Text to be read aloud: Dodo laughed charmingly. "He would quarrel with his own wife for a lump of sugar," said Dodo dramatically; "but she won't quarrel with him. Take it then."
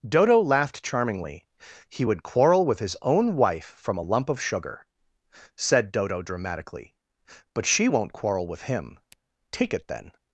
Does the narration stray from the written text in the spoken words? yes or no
yes